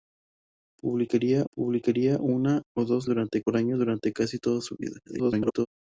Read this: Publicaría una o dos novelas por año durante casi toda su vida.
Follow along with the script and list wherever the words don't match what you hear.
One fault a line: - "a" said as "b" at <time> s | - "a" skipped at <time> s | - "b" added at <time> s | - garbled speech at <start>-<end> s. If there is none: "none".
- "publicaría" added at 1.5 s
- "novelas" said as "durante" at 3.1 s
- garbled speech at 5.1-5.7 s